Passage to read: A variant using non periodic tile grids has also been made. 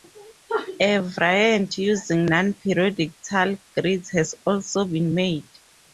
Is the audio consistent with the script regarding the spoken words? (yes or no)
yes